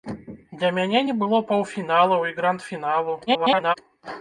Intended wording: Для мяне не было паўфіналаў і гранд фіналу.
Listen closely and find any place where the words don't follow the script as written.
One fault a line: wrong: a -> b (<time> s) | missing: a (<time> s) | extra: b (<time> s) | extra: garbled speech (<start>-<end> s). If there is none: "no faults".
extra: garbled speech (3.3-3.7 s)